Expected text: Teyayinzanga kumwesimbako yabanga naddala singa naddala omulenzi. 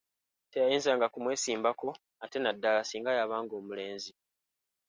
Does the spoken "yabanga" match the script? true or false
false